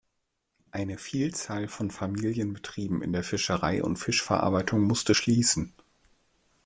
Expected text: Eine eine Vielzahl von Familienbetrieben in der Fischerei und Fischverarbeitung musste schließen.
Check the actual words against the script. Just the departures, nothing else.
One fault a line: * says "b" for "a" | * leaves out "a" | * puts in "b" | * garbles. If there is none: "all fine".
* leaves out "eine"